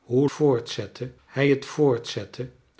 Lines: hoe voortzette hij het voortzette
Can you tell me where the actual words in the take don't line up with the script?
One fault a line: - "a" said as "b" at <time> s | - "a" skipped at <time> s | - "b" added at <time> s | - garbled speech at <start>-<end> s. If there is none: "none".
none